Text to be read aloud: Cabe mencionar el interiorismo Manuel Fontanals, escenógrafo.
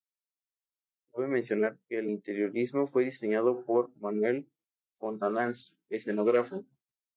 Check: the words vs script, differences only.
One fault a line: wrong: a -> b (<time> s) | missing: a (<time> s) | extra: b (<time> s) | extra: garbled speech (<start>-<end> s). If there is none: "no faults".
extra: que (1.9 s)
extra: fue diseñado por (2.9 s)